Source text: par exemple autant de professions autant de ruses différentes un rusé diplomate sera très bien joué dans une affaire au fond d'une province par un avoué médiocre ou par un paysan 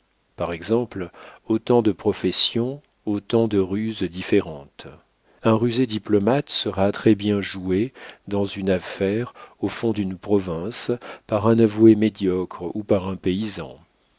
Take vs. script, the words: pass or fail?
pass